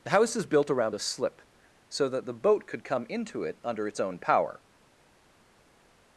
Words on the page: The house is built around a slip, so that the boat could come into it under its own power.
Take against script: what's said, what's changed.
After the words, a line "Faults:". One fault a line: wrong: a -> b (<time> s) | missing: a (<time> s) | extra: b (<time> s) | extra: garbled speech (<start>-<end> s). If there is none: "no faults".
The house is built around a slip, so that the boat could come into it under its own power.
Faults:
no faults